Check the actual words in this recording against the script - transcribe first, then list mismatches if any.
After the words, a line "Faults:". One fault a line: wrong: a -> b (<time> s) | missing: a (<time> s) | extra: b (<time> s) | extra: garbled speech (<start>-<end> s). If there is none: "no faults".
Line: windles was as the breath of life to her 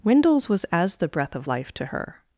windles was as the breath of life to her
Faults:
no faults